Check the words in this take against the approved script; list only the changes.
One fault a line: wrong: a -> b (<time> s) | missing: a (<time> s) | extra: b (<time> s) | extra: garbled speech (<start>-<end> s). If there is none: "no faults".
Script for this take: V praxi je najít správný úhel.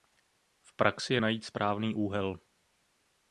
no faults